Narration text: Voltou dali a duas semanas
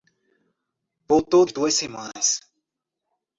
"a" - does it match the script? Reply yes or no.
no